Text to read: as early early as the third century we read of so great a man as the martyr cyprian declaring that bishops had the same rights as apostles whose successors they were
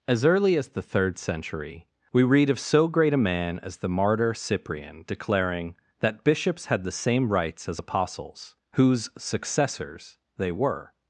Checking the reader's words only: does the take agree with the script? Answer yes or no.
no